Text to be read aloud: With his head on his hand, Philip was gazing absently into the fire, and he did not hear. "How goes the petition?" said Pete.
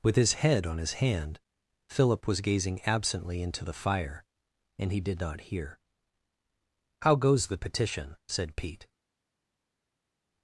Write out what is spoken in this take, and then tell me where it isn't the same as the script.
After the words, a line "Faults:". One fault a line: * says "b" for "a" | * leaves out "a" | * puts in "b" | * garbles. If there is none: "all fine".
With his head on his hand, Philip was gazing absently into the fire, and he did not hear. "How goes the petition?" said Pete.
Faults:
all fine